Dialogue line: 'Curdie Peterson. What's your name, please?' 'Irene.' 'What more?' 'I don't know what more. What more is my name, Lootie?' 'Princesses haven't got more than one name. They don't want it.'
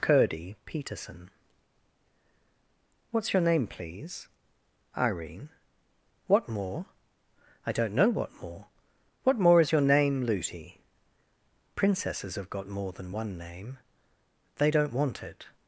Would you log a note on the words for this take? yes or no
yes